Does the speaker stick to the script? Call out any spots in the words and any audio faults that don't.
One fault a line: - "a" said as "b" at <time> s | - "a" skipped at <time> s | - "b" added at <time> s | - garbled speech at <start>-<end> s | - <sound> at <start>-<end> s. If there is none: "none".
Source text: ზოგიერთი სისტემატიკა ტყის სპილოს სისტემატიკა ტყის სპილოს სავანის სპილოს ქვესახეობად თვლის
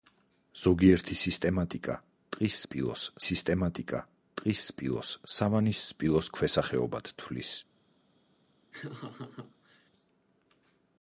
- laugh at 8.7-9.9 s